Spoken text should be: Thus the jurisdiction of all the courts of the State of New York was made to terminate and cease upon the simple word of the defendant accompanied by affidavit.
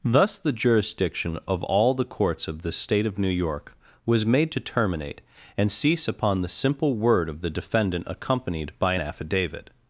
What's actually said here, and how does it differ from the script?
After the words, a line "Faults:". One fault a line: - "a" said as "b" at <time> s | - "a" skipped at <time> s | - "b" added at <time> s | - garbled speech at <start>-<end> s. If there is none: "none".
Thus the jurisdiction of all the courts of the State of New York was made to terminate and cease upon the simple word of the defendant accompanied by affidavit.
Faults:
none